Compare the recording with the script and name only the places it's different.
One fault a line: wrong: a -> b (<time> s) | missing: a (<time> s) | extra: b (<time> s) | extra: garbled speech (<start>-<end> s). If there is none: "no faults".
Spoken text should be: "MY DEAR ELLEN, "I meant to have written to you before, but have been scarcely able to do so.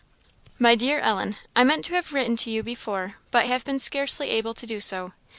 no faults